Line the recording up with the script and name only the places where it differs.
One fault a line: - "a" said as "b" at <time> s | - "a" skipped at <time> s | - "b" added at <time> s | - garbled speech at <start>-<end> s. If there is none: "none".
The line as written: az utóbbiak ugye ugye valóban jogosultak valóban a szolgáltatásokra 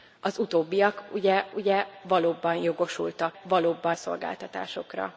none